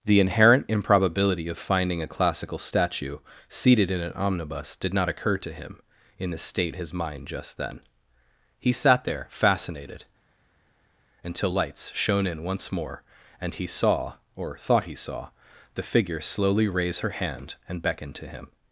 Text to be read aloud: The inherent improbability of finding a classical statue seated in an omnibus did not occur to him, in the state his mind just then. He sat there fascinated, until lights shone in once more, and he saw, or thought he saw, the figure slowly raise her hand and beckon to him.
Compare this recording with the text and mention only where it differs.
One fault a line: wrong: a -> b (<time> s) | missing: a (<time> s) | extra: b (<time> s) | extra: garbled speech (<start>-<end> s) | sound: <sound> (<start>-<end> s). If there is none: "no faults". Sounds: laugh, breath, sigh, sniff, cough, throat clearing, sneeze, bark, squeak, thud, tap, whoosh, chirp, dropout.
no faults